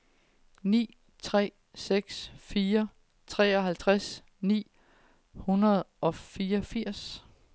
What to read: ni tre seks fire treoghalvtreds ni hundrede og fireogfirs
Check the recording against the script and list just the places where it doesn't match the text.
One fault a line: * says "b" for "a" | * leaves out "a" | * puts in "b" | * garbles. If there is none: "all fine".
all fine